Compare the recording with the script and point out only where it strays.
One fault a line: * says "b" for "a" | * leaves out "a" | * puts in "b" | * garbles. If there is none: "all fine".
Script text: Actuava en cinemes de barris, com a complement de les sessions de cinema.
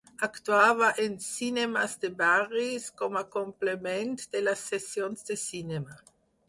all fine